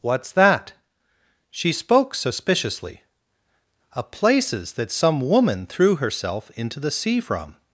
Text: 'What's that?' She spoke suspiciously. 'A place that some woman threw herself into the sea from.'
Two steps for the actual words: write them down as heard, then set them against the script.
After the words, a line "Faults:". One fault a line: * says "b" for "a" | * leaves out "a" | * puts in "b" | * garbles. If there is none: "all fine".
'What's that?' She spoke suspiciously. 'A places that some woman threw herself into the sea from.'
Faults:
* says "places" for "place"